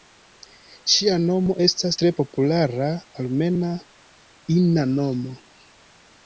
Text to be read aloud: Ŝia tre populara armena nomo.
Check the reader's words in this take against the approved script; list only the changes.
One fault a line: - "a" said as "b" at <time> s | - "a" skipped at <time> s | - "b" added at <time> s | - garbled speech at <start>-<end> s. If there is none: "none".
- "nomo estas" added at 1.2 s
- "ina" added at 4.6 s